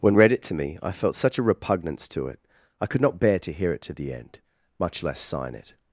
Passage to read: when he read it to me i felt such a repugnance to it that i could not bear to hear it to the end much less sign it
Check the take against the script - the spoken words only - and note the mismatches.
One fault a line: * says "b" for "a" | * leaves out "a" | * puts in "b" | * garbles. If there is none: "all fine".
* leaves out "he"
* leaves out "that"